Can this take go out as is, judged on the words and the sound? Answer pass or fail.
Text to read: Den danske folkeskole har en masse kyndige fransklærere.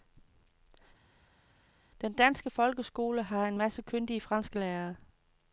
pass